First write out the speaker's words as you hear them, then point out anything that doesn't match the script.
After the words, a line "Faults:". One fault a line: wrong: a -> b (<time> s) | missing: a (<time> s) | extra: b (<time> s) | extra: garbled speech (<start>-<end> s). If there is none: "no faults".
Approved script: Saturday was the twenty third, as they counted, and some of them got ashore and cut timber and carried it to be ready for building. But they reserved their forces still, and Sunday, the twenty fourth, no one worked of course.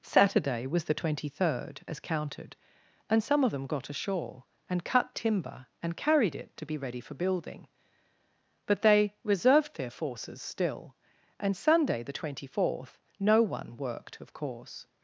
Saturday was the twenty third, as counted, and some of them got ashore and cut timber and carried it to be ready for building. But they reserved their forces still, and Sunday, the twenty fourth, no one worked of course.
Faults:
missing: they (2.0 s)